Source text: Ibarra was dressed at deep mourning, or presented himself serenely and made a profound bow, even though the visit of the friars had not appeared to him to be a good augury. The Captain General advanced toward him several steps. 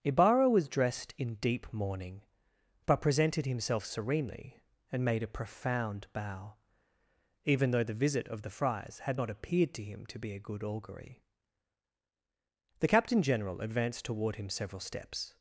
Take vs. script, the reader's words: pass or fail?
fail